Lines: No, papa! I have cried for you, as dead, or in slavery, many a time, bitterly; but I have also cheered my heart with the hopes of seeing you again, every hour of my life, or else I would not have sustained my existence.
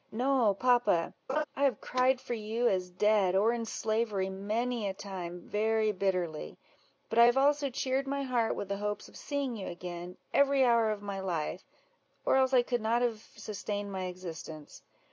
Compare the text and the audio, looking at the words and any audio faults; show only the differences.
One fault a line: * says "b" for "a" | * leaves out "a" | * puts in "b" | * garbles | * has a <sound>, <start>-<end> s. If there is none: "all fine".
* has a laugh, 1.3-1.4 s
* puts in "very"
* says "could" for "would"